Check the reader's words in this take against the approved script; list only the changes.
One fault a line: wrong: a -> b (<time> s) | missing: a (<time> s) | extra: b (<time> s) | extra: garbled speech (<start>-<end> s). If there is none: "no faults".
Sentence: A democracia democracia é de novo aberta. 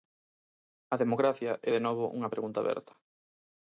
missing: democracia (1.5 s)
extra: unha pregunta (2.2 s)